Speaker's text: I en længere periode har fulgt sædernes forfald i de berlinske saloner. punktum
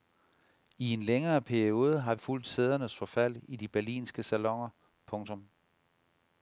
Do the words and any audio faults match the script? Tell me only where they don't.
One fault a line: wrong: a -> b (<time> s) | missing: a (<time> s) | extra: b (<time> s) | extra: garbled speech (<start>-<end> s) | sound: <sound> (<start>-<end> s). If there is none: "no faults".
no faults